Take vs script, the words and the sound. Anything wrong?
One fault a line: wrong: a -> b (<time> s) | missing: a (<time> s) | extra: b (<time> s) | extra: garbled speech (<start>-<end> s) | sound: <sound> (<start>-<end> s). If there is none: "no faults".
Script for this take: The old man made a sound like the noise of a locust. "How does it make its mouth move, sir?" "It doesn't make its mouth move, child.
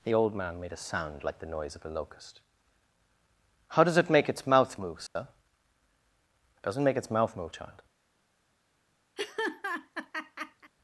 sound: dropout (5.1-5.2 s)
sound: laugh (9.2-10.7 s)